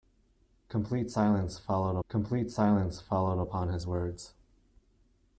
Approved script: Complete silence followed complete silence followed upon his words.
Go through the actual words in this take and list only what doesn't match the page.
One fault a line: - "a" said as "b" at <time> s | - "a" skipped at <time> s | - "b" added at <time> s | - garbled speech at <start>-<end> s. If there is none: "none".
none